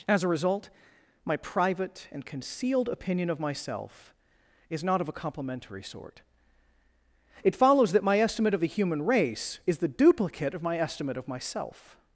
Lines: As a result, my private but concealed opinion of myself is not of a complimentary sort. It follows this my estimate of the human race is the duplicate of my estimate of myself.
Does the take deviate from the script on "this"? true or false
true